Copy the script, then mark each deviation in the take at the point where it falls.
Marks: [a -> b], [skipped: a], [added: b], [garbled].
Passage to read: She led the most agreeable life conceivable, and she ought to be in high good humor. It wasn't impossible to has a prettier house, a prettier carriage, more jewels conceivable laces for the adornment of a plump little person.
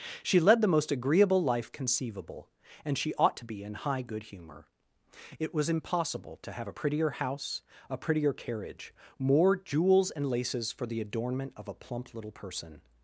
She led the most agreeable life conceivable, and she ought to be in high good humor. It [wasn't -> was] impossible to [has -> have] a prettier house, a prettier carriage, more jewels [conceivable -> and] laces for the adornment of a plump little person.